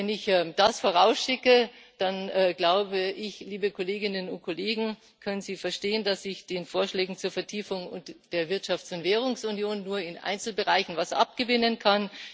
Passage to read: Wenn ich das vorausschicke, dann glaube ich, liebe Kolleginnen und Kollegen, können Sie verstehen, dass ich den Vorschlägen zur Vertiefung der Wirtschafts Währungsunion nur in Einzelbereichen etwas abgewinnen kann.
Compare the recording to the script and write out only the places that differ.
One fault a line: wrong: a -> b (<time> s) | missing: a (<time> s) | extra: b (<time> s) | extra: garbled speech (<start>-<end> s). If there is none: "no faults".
extra: und (8.9 s)